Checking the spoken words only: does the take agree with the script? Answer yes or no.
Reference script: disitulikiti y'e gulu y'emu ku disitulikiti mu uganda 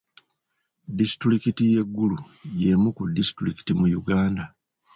yes